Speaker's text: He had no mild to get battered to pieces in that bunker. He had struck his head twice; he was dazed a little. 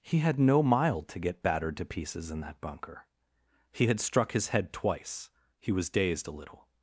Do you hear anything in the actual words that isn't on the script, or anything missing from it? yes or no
no